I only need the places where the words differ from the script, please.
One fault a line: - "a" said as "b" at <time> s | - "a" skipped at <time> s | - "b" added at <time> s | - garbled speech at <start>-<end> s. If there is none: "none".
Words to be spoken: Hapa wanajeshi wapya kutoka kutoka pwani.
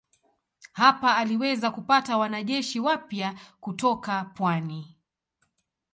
- "aliweza kupata" added at 1.2 s
- "kutoka" skipped at 4.2 s